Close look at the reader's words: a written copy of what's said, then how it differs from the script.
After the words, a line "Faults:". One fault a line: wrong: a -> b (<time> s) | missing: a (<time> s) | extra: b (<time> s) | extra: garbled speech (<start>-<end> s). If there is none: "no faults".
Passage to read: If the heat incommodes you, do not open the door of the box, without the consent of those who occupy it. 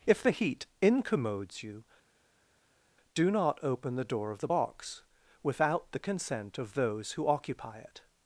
If the heat incommodes you, do not open the door of the box, without the consent of those who occupy it.
Faults:
no faults